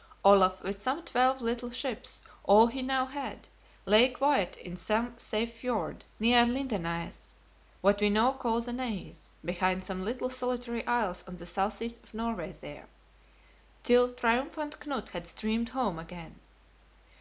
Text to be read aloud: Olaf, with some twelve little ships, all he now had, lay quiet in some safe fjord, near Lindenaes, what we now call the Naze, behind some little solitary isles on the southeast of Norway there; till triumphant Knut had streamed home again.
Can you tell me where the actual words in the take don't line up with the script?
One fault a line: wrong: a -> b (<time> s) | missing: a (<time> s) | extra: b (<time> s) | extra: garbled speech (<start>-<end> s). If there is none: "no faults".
no faults